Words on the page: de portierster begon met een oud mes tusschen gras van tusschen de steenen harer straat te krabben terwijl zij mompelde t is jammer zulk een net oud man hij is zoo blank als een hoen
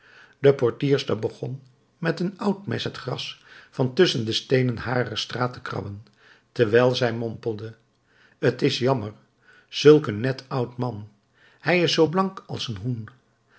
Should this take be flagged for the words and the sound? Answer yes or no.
yes